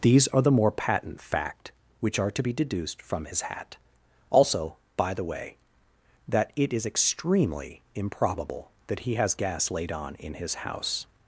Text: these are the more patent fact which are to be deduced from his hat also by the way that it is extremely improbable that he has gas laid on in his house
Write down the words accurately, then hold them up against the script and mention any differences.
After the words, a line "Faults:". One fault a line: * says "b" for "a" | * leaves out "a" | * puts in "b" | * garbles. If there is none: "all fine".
these are the more patent fact which are to be deduced from his hat also by the way that it is extremely improbable that he has gas laid on in his house
Faults:
all fine